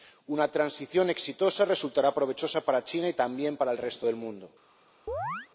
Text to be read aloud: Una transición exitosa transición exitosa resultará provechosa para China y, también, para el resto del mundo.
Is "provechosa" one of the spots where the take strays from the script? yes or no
no